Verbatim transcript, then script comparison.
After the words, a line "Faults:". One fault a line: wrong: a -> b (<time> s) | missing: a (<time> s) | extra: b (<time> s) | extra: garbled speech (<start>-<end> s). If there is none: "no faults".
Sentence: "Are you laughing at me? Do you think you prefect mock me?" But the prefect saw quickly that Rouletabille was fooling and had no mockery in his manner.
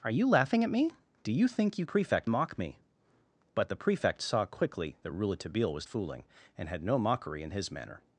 "Are you laughing at me? Do you think you prefect mock me?" But the prefect saw quickly that Rouletabille was fooling and had no mockery in his manner.
Faults:
no faults